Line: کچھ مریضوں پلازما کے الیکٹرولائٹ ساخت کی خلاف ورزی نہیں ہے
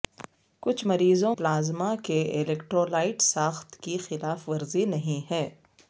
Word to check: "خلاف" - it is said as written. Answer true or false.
true